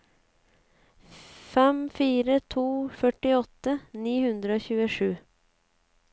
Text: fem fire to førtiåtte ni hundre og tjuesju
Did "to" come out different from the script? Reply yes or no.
no